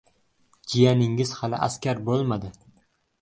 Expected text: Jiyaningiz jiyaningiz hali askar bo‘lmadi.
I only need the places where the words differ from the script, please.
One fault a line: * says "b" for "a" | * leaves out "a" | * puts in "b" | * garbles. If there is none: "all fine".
* leaves out "jiyaningiz"